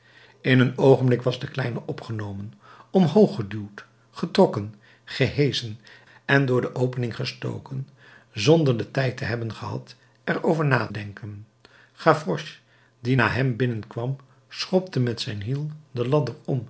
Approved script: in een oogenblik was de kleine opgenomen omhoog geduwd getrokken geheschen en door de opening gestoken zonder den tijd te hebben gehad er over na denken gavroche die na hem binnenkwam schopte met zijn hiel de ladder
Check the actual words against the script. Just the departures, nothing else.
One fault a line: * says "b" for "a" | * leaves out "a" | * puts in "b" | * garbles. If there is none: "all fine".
all fine